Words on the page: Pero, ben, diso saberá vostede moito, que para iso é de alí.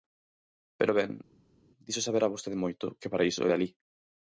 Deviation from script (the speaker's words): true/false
false